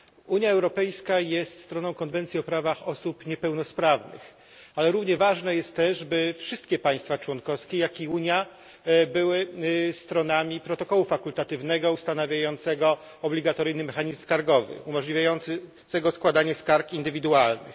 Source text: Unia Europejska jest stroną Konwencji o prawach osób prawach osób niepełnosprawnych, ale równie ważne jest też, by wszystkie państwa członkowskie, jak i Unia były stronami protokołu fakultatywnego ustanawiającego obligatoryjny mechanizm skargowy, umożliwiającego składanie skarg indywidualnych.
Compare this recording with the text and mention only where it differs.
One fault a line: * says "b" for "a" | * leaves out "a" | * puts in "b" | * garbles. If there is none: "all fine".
* leaves out "prawach osób"